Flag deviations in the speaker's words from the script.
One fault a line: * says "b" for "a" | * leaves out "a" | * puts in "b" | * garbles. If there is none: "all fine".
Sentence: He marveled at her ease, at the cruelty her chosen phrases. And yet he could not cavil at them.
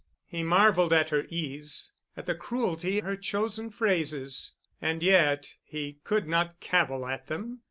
all fine